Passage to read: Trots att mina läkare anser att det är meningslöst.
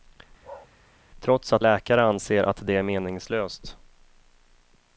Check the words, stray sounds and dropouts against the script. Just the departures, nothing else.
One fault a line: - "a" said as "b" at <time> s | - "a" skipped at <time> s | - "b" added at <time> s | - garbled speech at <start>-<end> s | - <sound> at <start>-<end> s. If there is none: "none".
- bark at 0.4-0.7 s
- "mina" skipped at 1.6 s